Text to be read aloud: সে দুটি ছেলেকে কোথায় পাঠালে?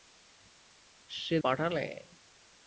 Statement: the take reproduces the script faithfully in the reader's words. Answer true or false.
false